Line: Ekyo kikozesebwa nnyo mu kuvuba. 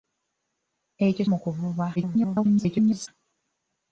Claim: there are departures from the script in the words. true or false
true